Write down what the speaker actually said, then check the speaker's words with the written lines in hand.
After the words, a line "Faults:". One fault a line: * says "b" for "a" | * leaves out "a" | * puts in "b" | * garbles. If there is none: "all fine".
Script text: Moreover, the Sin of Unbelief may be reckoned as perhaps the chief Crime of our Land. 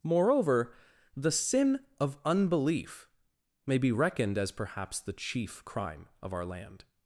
Moreover, the Sin of Unbelief may be reckoned as perhaps the chief Crime of our Land.
Faults:
all fine